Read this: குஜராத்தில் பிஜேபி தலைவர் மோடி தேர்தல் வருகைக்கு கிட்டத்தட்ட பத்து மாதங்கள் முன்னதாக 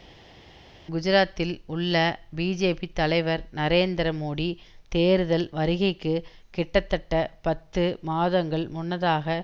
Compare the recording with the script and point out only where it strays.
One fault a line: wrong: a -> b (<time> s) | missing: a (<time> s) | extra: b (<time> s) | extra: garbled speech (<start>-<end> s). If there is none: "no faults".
extra: உள்ள (1.7 s)
extra: நரேந்திர (3.6 s)